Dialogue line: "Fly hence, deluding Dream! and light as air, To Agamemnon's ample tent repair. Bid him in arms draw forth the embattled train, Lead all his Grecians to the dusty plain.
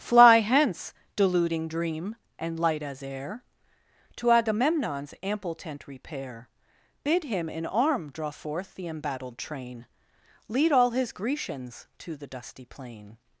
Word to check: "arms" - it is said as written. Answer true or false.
false